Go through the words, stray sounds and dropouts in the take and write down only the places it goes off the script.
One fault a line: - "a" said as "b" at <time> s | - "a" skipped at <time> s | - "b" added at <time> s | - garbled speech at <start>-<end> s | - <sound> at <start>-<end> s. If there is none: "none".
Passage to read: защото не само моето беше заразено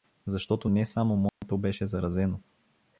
- dropout at 1.3-1.4 s